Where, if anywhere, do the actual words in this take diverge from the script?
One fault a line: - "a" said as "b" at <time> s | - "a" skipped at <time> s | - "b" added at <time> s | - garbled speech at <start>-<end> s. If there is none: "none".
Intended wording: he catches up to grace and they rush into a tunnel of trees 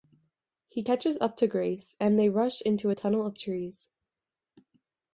none